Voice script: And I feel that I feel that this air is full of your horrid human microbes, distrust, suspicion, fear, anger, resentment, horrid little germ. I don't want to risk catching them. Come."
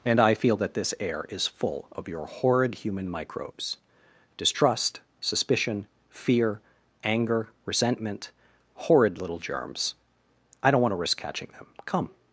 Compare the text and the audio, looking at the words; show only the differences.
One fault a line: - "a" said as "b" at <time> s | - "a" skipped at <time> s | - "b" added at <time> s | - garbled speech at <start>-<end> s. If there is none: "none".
- "I feel that" skipped at 0.7 s
- "germ" said as "germs" at 9.4 s